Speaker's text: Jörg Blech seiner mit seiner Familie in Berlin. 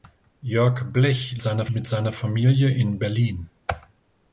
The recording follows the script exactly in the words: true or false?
true